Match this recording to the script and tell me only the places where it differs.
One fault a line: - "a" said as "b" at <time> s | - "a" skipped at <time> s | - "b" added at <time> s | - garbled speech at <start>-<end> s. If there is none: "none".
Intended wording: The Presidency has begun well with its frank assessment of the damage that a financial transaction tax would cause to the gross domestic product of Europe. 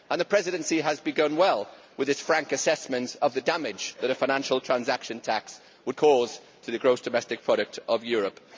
none